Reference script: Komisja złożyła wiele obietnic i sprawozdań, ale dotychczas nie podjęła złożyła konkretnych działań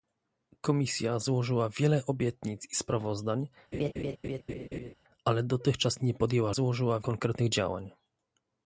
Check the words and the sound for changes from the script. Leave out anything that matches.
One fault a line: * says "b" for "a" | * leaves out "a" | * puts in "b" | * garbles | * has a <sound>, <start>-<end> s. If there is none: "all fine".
* has a laugh, 3.7-4.9 s